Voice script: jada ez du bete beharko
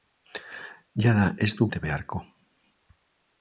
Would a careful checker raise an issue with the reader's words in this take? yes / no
no